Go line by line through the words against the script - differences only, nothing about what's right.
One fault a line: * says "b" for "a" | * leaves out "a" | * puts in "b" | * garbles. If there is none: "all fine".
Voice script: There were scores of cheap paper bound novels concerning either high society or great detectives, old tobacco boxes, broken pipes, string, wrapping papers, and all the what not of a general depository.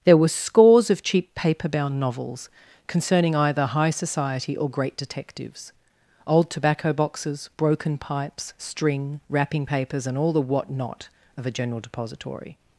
all fine